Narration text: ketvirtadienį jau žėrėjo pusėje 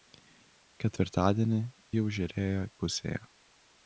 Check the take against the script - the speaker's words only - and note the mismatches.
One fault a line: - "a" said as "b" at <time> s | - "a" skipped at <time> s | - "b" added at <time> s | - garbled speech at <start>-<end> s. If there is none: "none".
none